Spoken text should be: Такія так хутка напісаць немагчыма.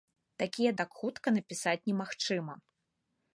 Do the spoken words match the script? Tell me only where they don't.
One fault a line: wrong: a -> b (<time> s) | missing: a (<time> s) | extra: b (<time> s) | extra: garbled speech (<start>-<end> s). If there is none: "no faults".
no faults